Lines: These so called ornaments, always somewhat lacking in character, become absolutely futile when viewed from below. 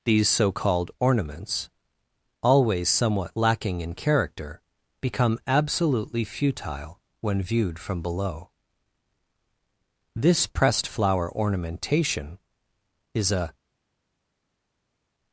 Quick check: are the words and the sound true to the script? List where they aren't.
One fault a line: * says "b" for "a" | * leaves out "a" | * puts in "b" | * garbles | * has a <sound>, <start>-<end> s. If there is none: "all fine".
* puts in "This pressed flower ornamentation is a"